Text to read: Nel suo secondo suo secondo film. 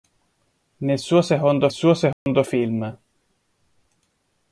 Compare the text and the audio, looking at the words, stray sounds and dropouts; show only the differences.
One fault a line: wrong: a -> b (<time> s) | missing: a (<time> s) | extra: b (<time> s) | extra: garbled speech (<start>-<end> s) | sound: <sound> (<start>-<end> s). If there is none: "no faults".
sound: dropout (2.1-2.3 s)